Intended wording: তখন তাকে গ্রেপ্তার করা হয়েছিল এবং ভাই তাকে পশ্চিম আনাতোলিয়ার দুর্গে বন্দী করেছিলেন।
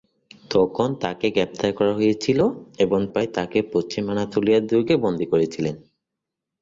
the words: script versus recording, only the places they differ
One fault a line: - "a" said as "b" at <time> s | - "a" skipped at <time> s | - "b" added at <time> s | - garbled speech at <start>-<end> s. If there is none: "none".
none